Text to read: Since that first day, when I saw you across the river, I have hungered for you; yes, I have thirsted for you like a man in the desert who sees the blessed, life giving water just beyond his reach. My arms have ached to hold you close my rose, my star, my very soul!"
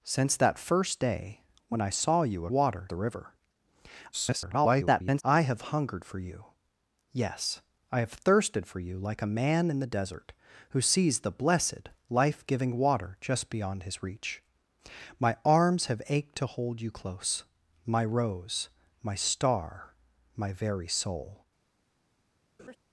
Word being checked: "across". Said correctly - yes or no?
no